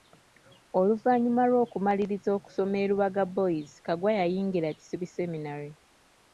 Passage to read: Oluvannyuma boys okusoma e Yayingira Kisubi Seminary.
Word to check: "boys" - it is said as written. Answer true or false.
false